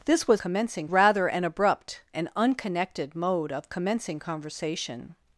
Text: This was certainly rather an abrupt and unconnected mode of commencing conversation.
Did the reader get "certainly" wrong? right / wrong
wrong